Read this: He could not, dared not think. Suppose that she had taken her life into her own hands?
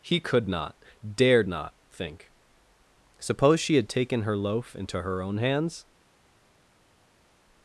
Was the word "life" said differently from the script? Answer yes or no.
yes